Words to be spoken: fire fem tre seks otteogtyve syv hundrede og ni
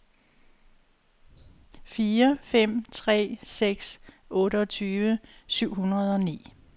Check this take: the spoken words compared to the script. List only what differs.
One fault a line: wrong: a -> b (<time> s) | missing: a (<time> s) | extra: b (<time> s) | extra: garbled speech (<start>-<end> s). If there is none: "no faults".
no faults